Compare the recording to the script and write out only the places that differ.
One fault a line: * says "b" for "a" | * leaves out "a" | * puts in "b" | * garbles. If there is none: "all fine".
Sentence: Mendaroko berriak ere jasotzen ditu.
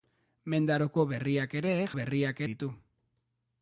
* says "berriak" for "jasotzen"